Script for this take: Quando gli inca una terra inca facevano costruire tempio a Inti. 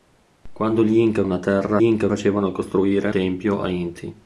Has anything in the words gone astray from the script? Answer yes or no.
no